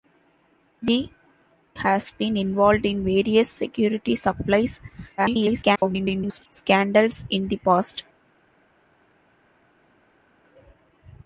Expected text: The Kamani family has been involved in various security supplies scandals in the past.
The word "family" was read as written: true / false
false